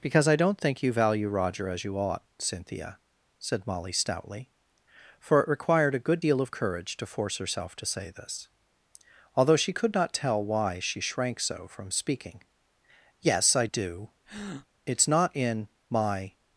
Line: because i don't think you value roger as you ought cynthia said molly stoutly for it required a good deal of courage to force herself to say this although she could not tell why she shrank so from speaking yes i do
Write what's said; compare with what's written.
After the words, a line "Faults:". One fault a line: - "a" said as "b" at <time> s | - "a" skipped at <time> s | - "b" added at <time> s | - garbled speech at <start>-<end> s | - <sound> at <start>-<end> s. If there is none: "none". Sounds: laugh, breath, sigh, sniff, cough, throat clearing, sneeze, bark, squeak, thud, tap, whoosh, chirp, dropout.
because i don't think you value roger as you ought cynthia said molly stoutly for it required a good deal of courage to force herself to say this although she could not tell why she shrank so from speaking yes i do it's not in my
Faults:
- breath at 14.2-14.7 s
- "it's not in my" added at 14.8 s